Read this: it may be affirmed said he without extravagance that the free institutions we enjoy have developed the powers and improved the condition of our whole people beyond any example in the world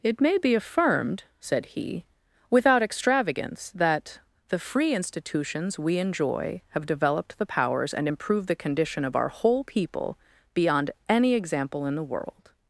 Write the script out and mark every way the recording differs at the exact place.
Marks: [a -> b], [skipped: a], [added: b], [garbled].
it may be affirmed said he without extravagance that the free institutions we enjoy have developed the powers and improved the condition of our whole people beyond any example in the world